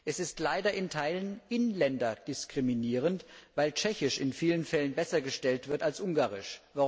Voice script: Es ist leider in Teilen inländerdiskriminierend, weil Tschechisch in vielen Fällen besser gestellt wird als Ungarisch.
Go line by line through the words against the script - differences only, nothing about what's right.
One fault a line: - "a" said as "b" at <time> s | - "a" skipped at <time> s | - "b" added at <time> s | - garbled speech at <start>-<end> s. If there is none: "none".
none